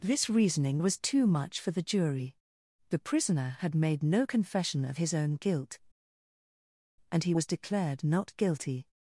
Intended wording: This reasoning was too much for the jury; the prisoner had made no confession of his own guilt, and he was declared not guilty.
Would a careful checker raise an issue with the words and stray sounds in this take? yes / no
no